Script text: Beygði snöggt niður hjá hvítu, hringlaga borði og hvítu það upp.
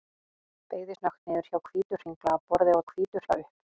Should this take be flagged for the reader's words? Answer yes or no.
no